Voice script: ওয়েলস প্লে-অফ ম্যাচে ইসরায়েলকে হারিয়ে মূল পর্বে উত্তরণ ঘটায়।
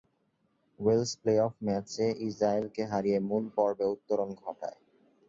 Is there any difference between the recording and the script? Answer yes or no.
no